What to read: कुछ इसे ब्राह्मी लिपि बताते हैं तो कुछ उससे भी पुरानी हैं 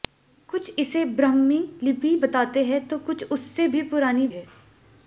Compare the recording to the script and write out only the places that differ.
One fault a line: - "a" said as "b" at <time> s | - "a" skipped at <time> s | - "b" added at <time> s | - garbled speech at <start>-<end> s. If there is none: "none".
none